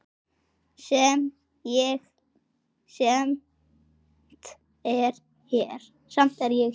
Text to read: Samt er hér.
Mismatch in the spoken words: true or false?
false